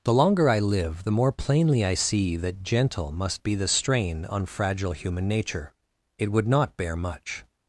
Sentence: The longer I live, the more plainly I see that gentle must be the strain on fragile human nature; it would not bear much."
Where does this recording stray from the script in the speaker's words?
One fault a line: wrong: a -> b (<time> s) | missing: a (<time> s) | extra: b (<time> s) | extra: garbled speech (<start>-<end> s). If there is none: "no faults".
no faults